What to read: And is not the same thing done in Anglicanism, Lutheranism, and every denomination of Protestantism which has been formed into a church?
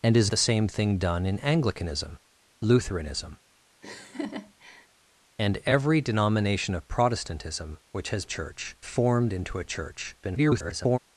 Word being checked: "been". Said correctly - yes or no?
no